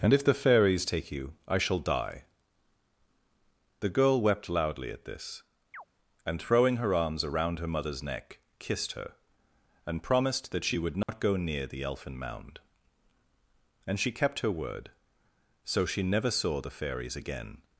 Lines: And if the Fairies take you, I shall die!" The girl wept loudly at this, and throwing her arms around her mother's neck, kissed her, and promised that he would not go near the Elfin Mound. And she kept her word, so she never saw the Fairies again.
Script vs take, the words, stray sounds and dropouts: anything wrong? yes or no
yes